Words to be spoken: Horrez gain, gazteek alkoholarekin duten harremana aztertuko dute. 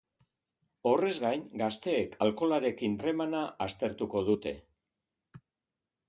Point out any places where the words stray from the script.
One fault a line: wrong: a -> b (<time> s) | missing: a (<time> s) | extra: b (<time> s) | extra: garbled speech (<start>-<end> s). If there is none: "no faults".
missing: duten (3.0 s)